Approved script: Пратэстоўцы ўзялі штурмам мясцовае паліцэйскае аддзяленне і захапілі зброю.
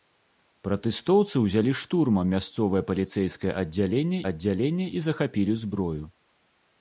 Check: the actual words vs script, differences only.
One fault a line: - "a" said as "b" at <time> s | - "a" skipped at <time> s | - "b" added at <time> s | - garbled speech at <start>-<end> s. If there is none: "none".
- "аддзяленне" added at 4.3 s